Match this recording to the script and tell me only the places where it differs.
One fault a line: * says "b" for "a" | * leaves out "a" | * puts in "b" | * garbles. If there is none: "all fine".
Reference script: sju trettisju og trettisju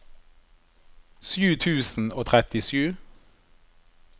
* says "tusen" for "trettisju"